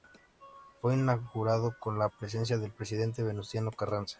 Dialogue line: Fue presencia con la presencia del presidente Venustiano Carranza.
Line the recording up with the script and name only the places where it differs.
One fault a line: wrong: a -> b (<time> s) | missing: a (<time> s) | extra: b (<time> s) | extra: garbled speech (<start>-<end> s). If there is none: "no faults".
wrong: presencia -> inaugurado (0.9 s)